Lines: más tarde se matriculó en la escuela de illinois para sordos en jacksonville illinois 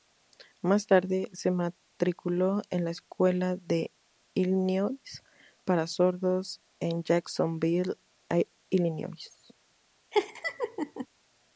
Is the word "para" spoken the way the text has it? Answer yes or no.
yes